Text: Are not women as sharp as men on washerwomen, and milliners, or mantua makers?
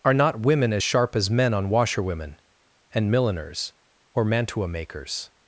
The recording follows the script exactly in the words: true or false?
true